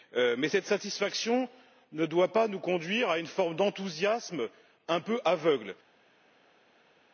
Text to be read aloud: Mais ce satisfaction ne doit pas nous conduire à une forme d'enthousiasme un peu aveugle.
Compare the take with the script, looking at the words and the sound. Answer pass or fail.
fail